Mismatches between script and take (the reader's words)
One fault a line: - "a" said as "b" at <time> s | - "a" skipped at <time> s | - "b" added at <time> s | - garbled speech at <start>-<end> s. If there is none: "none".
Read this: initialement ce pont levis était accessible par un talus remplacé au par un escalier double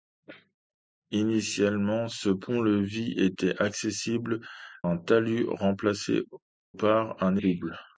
- "par" skipped at 4.4 s
- "au" skipped at 6.2 s
- "escalier" skipped at 7.4 s